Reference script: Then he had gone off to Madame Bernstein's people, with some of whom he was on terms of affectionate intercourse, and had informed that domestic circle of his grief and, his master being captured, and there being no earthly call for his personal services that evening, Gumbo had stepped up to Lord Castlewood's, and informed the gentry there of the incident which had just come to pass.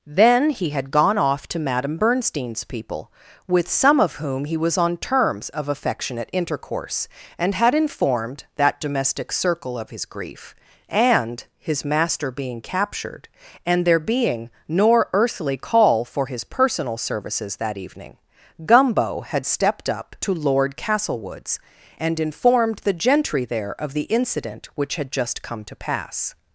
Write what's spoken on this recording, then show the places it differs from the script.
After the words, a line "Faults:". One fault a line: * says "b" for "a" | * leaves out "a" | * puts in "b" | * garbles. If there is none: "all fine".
Then he had gone off to Madame Bernstein's people, with some of whom he was on terms of affectionate intercourse, and had informed that domestic circle of his grief and, his master being captured, and there being nor earthly call for his personal services that evening, Gumbo had stepped up to Lord Castlewood's, and informed the gentry there of the incident which had just come to pass.
Faults:
* says "nor" for "no"